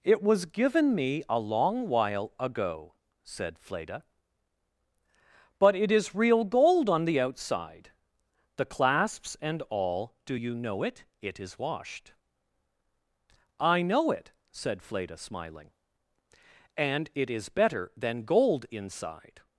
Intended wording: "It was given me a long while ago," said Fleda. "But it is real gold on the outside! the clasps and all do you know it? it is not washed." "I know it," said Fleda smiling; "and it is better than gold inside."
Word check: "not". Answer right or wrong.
wrong